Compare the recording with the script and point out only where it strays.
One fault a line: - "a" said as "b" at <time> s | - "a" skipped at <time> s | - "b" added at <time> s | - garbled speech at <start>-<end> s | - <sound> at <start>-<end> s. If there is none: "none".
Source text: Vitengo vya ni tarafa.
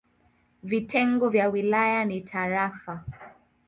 - "wilaya" added at 1.5 s